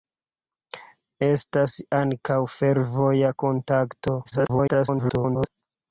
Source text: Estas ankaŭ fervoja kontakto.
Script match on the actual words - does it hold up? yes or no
no